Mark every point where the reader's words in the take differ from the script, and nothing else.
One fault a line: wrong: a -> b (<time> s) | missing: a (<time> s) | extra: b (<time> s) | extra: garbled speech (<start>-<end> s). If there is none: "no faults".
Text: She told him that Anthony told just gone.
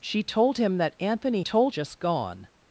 no faults